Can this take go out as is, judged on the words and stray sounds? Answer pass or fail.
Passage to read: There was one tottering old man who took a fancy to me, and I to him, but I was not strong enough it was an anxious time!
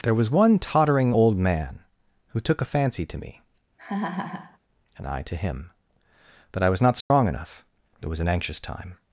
fail